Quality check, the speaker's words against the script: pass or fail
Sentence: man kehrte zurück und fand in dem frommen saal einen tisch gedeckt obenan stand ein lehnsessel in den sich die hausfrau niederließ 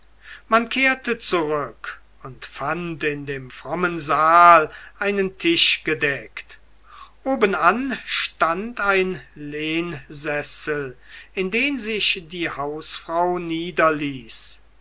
pass